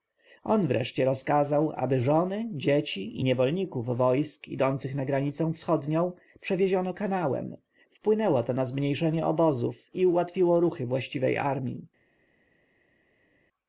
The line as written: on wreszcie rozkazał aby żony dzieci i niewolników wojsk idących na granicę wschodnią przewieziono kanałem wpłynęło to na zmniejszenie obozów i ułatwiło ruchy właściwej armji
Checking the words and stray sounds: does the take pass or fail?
pass